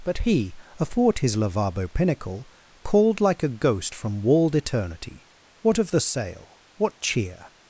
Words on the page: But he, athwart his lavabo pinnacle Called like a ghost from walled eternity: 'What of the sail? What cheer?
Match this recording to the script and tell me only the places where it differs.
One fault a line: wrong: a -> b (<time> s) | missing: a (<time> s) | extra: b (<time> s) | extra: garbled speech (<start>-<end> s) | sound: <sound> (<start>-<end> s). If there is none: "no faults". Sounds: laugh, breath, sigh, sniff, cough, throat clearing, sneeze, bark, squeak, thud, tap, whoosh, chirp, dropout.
no faults